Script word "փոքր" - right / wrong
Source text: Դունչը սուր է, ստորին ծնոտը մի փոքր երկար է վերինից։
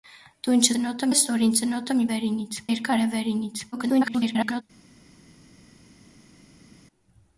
wrong